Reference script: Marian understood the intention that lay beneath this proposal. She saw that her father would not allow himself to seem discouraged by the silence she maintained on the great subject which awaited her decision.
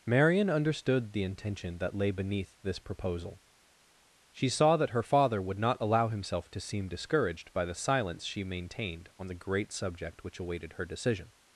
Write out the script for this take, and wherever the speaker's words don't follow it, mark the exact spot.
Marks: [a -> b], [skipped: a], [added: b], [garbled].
Marian understood the intention that lay beneath this proposal. She saw that her father would not allow himself to seem discouraged by the silence she maintained on the great subject which awaited her decision.